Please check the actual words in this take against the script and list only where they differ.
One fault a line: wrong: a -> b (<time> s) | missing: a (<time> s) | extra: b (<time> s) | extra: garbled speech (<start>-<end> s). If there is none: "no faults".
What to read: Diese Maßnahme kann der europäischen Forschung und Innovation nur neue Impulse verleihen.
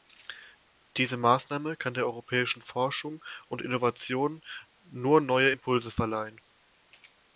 no faults